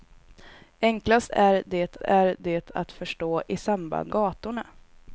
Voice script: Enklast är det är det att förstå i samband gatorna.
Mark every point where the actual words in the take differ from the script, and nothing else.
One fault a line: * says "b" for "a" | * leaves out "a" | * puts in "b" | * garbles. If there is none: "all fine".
all fine